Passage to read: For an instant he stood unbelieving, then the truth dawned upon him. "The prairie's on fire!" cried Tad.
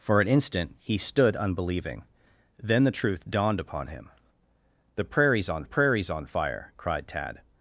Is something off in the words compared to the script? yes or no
yes